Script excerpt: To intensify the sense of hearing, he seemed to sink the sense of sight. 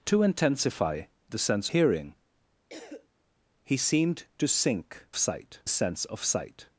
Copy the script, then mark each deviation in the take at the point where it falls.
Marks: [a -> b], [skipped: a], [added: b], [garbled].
To intensify the sense [skipped: of] hearing, he seemed to sink [the -> sight] sense of sight.